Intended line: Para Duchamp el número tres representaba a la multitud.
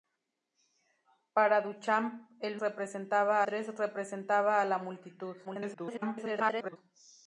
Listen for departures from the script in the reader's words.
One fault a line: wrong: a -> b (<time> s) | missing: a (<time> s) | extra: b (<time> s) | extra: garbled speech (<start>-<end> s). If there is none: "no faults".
wrong: número -> representaba (2.6 s)
extra: garbled speech (5.4-6.8 s)